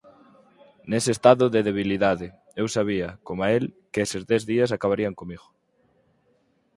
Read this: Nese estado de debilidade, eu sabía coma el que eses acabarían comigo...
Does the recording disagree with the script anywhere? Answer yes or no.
yes